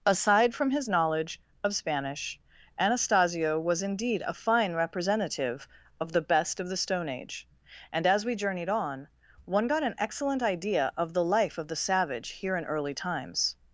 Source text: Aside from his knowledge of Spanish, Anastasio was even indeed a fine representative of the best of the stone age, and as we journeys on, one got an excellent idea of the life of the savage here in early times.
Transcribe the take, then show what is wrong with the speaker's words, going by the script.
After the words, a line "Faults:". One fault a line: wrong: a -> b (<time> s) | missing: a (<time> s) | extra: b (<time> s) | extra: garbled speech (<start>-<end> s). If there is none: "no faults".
Aside from his knowledge of Spanish, Anastasio was indeed a fine representative of the best of the stone age, and as we journeyed on, one got an excellent idea of the life of the savage here in early times.
Faults:
missing: even (3.8 s)
wrong: journeys -> journeyed (8.3 s)